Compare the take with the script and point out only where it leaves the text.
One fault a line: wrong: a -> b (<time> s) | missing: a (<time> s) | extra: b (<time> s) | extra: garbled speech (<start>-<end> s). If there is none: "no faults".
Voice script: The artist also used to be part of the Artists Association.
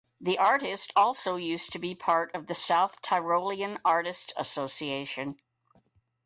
extra: South Tyrolean (2.5 s)